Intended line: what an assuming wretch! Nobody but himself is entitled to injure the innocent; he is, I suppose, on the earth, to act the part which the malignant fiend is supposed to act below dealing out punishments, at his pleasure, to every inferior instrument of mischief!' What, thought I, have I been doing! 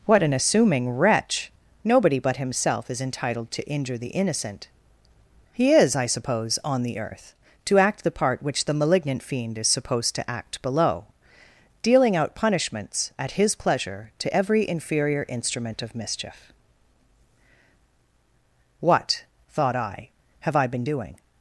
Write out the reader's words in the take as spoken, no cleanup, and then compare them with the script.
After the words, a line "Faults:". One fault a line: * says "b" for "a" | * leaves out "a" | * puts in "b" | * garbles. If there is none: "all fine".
what an assuming wretch! Nobody but himself is entitled to injure the innocent; he is, I suppose, on the earth, to act the part which the malignant fiend is supposed to act below dealing out punishments, at his pleasure, to every inferior instrument of mischief!' What, thought I, have I been doing!
Faults:
all fine